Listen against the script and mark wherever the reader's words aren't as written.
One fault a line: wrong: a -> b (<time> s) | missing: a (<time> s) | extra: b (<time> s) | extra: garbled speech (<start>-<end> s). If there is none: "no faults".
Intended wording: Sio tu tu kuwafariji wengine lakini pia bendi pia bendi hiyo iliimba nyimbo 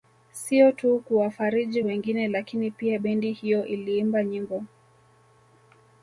missing: tu (1.0 s)
missing: pia bendi (3.3 s)